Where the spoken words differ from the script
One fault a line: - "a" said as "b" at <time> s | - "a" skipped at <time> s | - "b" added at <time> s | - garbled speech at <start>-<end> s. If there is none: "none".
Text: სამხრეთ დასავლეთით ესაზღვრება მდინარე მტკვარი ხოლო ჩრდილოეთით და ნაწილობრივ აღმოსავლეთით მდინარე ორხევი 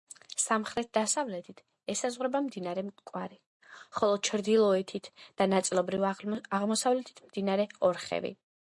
none